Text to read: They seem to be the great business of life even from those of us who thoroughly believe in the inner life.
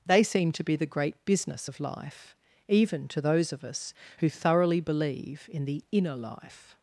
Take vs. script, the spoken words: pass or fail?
fail